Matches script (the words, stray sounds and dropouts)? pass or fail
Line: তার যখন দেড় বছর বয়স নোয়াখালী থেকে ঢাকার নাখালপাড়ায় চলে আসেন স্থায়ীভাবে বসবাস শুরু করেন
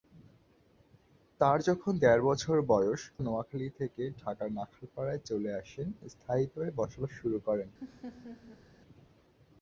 fail